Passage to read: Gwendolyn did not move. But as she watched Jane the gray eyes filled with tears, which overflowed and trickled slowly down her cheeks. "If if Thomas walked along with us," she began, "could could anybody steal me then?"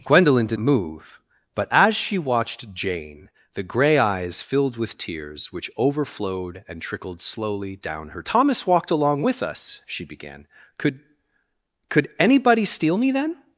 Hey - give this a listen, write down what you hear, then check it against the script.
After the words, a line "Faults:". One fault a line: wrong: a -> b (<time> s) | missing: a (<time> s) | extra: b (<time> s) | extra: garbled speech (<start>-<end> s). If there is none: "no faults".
Gwendolyn did move. But as she watched Jane the gray eyes filled with tears, which overflowed and trickled slowly down her Thomas walked along with us," she began, "could could anybody steal me then?"
Faults:
missing: not (0.6 s)
missing: cheeks If if (8.2 s)